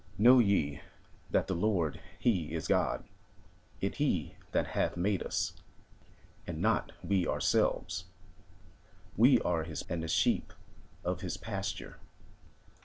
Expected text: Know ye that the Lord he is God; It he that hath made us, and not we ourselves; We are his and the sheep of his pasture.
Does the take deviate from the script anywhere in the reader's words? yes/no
no